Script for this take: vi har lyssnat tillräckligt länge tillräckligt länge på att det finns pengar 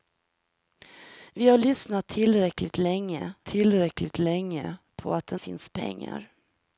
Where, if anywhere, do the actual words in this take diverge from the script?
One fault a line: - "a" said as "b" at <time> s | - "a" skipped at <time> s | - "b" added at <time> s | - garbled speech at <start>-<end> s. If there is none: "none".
none